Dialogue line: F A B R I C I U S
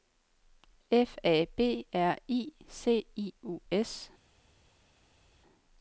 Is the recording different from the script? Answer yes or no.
no